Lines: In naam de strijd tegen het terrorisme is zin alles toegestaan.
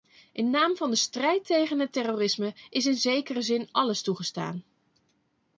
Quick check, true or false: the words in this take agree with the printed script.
false